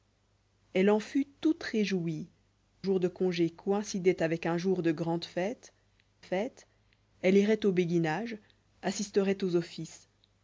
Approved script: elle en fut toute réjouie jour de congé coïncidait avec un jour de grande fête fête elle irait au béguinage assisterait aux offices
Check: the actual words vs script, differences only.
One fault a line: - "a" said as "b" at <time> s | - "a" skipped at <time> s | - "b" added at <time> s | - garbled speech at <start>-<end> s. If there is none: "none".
none